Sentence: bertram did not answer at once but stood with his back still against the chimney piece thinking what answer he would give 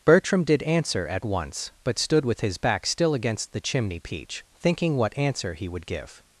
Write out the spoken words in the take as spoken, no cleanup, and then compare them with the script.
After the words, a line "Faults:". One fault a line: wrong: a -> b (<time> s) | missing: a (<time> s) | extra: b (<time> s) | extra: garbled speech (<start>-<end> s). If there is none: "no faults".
bertram did answer at once but stood with his back still against the chimney peach thinking what answer he would give
Faults:
missing: not (0.6 s)
wrong: piece -> peach (4.0 s)